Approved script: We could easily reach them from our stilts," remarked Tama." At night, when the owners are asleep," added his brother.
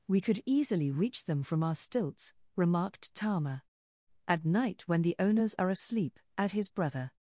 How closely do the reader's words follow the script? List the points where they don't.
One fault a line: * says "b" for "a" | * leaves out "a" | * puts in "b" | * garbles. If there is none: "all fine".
* says "add" for "added"